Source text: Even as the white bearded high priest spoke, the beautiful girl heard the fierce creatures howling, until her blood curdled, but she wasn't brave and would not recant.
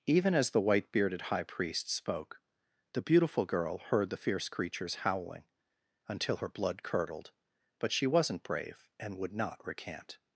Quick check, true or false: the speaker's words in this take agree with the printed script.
true